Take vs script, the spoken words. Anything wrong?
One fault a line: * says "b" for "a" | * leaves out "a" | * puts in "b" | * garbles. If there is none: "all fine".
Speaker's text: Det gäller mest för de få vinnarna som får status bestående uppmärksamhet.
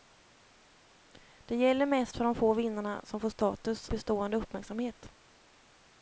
all fine